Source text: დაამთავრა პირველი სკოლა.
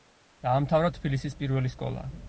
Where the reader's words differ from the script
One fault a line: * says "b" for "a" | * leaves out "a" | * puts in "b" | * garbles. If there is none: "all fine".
* puts in "თბილისის"